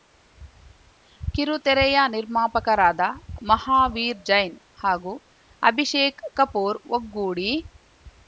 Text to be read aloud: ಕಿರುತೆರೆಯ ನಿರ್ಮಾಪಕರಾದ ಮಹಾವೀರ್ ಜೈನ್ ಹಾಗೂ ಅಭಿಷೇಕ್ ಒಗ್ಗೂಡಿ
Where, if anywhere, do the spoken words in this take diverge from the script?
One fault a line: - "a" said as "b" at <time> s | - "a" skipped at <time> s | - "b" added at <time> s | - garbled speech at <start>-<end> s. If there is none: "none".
- "ಕಪೂರ್" added at 6.4 s